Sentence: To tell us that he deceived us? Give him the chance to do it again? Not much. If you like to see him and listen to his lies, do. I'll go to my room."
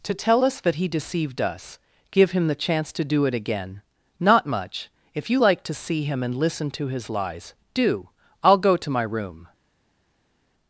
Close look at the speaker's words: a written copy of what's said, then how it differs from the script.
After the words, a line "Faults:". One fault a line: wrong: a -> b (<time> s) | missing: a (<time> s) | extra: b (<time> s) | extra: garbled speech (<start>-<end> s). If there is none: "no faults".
To tell us that he deceived us? Give him the chance to do it again? Not much. If you like to see him and listen to his lies, do. I'll go to my room."
Faults:
no faults